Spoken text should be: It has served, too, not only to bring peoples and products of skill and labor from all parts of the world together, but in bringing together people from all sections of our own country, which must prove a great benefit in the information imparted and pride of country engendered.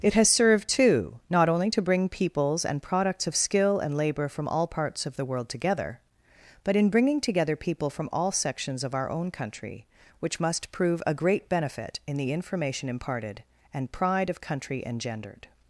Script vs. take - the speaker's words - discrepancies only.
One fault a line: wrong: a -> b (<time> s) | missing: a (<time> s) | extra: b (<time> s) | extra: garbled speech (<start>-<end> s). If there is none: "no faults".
no faults